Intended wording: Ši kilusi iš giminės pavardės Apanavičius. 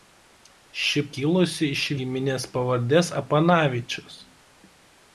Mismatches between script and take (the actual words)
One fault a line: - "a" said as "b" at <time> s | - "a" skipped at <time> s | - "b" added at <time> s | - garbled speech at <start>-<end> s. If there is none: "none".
none